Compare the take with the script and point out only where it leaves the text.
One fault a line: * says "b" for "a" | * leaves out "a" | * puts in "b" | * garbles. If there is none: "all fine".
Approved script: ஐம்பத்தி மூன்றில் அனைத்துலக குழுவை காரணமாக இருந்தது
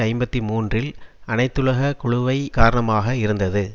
all fine